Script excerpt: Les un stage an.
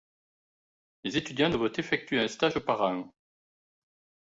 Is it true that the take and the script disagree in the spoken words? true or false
true